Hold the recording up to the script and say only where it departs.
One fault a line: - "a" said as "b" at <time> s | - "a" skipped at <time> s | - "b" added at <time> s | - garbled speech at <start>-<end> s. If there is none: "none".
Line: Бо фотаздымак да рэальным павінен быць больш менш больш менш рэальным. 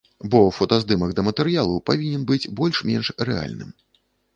- "рэальным" said as "матэрыялу" at 1.3 s
- "больш менш" skipped at 3.2 s